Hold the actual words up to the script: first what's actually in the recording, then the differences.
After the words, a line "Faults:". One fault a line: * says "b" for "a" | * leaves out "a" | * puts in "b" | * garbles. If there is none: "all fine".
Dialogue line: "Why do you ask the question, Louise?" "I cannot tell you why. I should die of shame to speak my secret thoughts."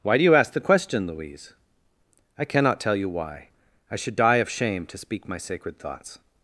"Why do you ask the question, Louise?" "I cannot tell you why. I should die of shame to speak my sacred thoughts."
Faults:
* says "sacred" for "secret"